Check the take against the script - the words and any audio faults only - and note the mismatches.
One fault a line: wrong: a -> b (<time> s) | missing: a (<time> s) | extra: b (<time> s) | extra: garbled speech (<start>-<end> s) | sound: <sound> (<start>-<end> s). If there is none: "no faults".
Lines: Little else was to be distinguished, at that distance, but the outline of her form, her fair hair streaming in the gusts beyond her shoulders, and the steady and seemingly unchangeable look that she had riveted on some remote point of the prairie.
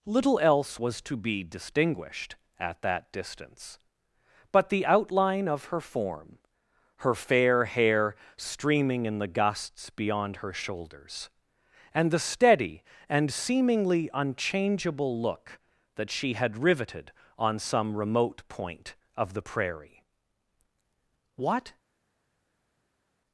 extra: What (21.4 s)